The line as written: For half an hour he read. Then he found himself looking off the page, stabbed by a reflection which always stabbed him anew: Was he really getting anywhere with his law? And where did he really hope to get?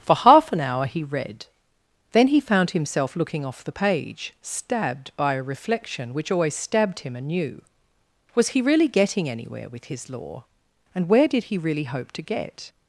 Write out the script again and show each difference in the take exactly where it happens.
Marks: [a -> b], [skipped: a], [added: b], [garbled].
For half an hour he read. Then he found himself looking off the page, stabbed by a reflection which always stabbed him anew: Was he really getting anywhere with his law? And where did he really hope to get?